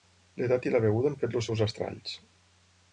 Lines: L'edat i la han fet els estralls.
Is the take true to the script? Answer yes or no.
no